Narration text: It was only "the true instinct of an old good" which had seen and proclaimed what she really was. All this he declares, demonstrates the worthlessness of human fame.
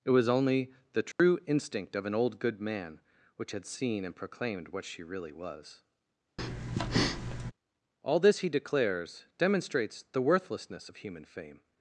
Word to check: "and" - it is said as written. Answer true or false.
true